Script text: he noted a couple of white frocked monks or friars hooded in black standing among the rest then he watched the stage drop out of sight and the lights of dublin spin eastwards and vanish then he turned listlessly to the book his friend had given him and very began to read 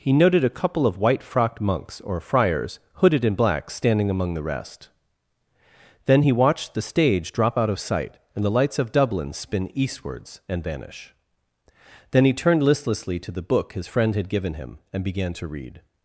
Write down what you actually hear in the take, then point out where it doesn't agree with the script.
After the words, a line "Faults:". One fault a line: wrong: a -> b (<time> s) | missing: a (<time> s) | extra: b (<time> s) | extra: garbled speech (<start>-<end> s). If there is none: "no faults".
he noted a couple of white frocked monks or friars hooded in black standing among the rest then he watched the stage drop out of sight and the lights of dublin spin eastwards and vanish then he turned listlessly to the book his friend had given him and began to read
Faults:
missing: very (15.0 s)